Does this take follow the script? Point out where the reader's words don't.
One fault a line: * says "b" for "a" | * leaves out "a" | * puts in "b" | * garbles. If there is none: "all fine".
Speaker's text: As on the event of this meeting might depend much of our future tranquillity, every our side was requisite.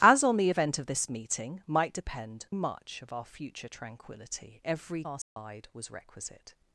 all fine